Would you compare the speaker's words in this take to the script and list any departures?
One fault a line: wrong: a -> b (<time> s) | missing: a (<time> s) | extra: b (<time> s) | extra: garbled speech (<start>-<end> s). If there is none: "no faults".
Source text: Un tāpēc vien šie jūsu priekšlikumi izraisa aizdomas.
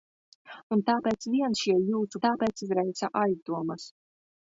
wrong: priekšlikumi -> tāpēc (2.2 s)